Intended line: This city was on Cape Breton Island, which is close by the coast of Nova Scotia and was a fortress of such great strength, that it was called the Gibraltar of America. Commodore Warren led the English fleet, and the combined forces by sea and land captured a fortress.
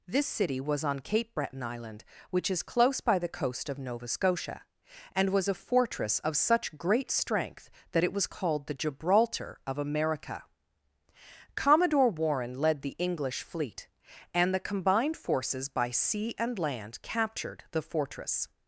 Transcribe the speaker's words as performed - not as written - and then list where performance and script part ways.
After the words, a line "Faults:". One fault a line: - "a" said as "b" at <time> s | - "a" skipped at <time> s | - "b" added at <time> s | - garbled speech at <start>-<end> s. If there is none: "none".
This city was on Cape Breton Island, which is close by the coast of Nova Scotia and was a fortress of such great strength, that it was called the Gibraltar of America. Commodore Warren led the English fleet, and the combined forces by sea and land captured the fortress.
Faults:
- "a" said as "the" at 17.7 s